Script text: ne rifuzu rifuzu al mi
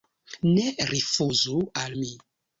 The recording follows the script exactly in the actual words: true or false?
false